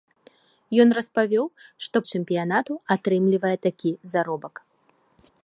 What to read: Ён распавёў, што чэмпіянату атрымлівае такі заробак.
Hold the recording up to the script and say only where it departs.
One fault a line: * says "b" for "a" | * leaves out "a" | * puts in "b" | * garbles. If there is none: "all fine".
all fine